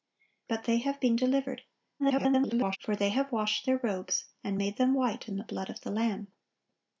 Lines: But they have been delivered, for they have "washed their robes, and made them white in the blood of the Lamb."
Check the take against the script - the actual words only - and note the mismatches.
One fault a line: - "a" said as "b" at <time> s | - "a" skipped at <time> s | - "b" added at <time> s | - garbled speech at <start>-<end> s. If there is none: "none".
- garbled speech at 2.0-2.8 s